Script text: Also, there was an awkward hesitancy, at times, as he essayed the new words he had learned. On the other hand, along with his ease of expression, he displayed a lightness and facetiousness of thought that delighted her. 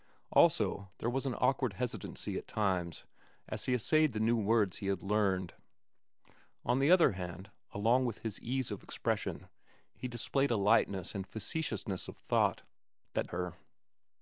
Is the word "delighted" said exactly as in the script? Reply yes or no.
no